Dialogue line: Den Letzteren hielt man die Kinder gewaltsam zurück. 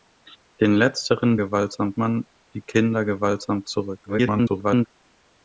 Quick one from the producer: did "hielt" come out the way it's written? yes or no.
no